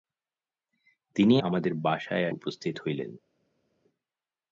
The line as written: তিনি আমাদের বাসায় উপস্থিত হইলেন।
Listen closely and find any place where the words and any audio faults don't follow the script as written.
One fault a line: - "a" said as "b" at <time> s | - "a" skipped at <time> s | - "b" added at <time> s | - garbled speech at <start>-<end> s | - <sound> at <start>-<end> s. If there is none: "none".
none